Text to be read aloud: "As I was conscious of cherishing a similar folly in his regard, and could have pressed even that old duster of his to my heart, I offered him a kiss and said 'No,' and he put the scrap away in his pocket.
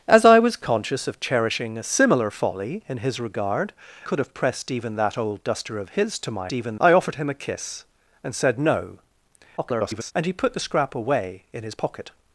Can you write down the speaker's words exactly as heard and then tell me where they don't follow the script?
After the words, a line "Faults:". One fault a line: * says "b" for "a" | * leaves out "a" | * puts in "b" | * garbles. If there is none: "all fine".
"As I was conscious of cherishing a similar folly in his regard, could have pressed even that old duster of his to my even, I offered him a kiss and said 'No,' [garbled] and he put the scrap away in his pocket.
Faults:
* leaves out "and"
* says "even" for "heart"
* garbles